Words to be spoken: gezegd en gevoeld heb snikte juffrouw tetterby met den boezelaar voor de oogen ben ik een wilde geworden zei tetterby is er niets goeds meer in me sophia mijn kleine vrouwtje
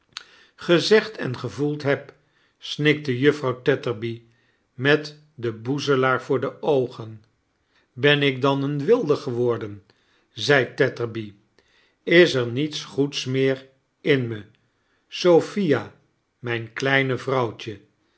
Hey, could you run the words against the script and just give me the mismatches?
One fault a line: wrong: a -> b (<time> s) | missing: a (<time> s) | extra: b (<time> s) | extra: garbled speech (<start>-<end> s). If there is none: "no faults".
extra: dan (8.4 s)